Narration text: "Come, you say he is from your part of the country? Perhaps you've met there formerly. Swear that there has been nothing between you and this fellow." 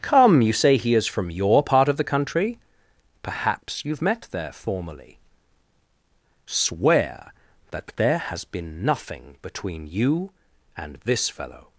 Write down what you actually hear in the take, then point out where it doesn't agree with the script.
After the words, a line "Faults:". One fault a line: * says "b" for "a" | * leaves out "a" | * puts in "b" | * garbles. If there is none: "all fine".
"Come, you say he is from your part of the country? Perhaps you've met there formerly. Swear that there has been nothing between you and this fellow."
Faults:
all fine